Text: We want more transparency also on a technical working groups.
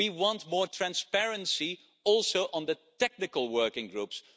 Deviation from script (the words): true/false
true